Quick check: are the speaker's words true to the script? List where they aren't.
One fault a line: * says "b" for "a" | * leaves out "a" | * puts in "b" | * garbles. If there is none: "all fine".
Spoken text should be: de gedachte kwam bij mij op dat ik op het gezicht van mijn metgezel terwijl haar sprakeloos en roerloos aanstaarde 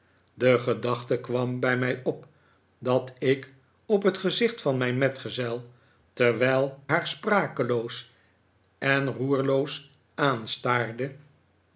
all fine